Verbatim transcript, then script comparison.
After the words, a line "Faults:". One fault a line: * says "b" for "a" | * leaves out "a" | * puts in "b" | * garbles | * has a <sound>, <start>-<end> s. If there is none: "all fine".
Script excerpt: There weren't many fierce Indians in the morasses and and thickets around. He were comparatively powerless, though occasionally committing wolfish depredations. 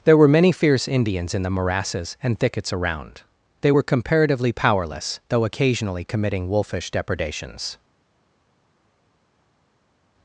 There were many fierce Indians in the morasses and thickets around. They were comparatively powerless, though occasionally committing wolfish depredations.
Faults:
* says "were" for "weren't"
* leaves out "and"
* says "They" for "He"